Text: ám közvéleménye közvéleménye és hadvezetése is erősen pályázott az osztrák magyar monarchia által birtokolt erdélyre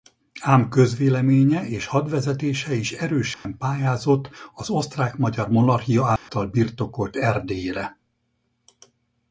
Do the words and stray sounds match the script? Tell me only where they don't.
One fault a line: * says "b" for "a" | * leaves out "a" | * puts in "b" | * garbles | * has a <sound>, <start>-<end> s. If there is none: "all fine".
* leaves out "közvéleménye"
* has a dropout, 3.3-3.5 s
* has a dropout, 6.2-6.3 s